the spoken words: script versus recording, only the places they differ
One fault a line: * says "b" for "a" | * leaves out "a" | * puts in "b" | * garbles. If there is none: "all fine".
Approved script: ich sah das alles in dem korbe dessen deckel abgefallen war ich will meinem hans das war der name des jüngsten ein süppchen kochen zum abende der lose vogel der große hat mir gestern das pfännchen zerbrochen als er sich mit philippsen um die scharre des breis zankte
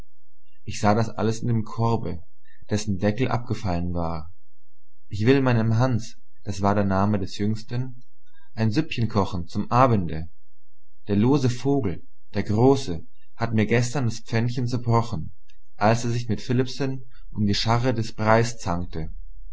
all fine